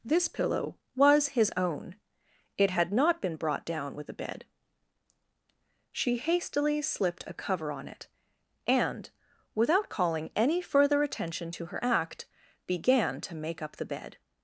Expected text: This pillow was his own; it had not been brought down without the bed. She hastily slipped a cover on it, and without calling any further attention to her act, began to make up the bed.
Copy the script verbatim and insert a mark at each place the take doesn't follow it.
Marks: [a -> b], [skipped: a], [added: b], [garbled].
This pillow was his own; it had not been brought down [without -> with] the bed. She hastily slipped a cover on it, and without calling any further attention to her act, began to make up the bed.